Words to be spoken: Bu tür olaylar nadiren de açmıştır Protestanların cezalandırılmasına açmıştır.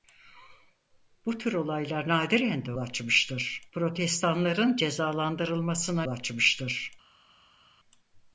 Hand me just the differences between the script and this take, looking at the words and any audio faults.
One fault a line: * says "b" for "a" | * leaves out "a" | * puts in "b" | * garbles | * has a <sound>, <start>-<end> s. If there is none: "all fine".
all fine